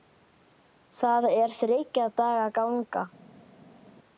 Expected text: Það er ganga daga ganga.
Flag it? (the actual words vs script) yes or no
yes